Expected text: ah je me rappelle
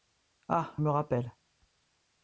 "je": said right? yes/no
no